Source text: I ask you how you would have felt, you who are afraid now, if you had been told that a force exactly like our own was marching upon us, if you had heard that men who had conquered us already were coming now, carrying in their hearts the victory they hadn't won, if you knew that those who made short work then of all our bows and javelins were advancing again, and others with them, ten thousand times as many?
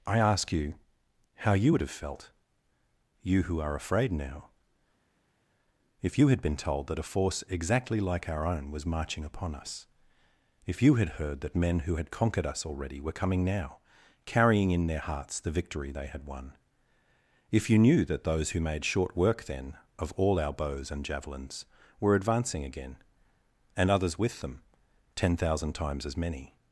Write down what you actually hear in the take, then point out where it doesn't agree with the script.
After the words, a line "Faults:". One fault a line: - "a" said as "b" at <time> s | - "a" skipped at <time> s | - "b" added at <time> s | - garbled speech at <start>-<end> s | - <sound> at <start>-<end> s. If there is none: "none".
I ask you how you would have felt, you who are afraid now, if you had been told that a force exactly like our own was marching upon us, if you had heard that men who had conquered us already were coming now, carrying in their hearts the victory they had won, if you knew that those who made short work then of all our bows and javelins were advancing again, and others with them, ten thousand times as many?
Faults:
- "hadn't" said as "had" at 16.1 s